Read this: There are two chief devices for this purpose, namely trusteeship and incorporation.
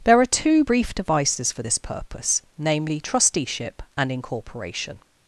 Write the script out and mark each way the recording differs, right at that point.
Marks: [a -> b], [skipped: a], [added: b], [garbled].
There are two [chief -> brief] devices for this purpose, namely trusteeship and incorporation.